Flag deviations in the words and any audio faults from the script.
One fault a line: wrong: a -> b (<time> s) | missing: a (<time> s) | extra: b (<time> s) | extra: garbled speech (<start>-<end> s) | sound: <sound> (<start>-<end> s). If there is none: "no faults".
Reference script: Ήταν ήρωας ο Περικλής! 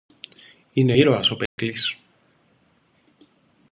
wrong: Ήταν -> Είναι (0.7 s)
sound: dropout (1.5-1.6 s)